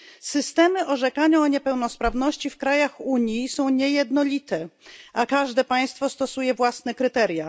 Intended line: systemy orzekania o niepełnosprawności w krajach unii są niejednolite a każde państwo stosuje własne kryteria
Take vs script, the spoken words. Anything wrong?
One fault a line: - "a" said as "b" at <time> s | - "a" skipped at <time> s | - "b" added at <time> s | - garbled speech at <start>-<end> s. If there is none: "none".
none